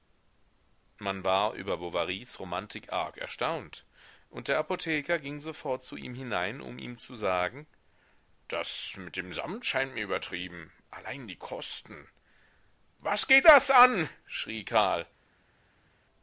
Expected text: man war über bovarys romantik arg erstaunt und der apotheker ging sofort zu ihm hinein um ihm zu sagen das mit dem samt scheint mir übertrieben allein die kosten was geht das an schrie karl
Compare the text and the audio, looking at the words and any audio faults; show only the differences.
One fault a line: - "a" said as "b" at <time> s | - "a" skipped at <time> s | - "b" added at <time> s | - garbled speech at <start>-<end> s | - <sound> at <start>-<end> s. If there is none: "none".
none